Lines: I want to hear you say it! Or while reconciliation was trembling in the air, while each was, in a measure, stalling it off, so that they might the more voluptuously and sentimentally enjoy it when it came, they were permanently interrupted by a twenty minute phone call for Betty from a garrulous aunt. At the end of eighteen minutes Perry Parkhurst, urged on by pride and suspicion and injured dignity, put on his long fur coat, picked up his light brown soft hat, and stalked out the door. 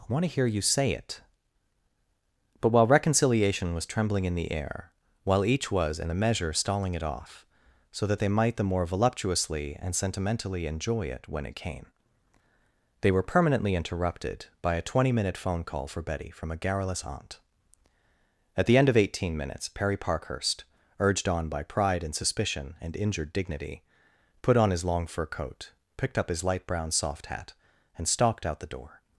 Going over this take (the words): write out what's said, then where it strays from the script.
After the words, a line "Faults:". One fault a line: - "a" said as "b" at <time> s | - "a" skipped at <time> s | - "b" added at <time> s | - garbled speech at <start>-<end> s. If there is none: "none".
I want to hear you say it! But while reconciliation was trembling in the air, while each was, in a measure, stalling it off, so that they might the more voluptuously and sentimentally enjoy it when it came, they were permanently interrupted by a twenty minute phone call for Betty from a garrulous aunt. At the end of eighteen minutes Perry Parkhurst, urged on by pride and suspicion and injured dignity, put on his long fur coat, picked up his light brown soft hat, and stalked out the door.
Faults:
- "Or" said as "But" at 2.6 s